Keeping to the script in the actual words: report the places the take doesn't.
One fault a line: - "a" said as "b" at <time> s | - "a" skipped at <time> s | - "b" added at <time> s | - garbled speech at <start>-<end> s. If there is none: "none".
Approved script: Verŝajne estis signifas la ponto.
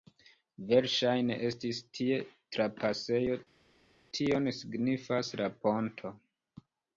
- "tie trapasejo tion" added at 2.0 s